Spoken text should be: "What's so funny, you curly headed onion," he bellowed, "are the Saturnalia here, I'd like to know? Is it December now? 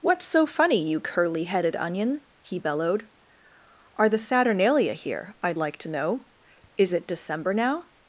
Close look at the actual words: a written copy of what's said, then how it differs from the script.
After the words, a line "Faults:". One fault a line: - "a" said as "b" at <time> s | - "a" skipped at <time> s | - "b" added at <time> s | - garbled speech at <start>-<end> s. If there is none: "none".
"What's so funny, you curly headed onion," he bellowed, "are the Saturnalia here, I'd like to know? Is it December now?
Faults:
none